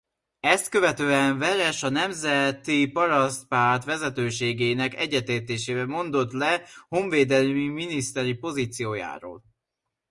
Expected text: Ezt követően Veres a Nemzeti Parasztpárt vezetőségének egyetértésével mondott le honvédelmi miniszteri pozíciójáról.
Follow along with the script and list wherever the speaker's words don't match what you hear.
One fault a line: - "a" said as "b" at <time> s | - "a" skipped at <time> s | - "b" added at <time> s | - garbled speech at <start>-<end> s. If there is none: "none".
none